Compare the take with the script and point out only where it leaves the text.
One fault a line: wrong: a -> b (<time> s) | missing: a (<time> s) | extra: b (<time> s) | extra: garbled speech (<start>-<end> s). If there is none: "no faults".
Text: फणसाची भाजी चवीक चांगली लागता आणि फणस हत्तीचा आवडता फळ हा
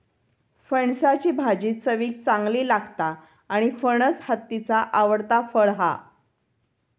no faults